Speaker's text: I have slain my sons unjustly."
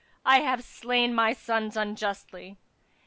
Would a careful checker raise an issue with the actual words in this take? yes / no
no